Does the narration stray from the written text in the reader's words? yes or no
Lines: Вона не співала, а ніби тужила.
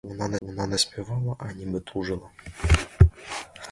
yes